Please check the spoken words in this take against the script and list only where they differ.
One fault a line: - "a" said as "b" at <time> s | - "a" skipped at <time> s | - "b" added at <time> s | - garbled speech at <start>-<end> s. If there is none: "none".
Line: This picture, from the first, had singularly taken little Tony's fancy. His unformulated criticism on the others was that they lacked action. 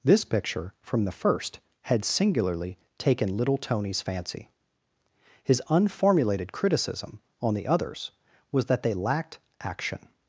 none